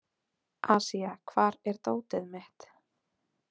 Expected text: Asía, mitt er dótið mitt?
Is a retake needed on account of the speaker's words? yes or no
yes